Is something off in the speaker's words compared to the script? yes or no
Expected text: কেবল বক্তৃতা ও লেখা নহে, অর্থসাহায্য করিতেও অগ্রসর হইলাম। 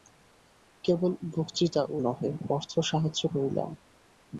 yes